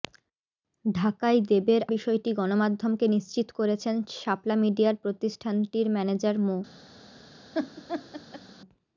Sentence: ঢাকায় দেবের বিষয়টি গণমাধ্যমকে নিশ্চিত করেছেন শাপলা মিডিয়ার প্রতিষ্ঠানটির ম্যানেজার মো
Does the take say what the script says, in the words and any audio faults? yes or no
no